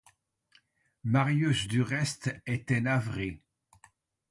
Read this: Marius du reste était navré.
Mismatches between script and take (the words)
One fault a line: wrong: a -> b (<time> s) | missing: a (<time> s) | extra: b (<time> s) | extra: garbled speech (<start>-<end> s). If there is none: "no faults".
no faults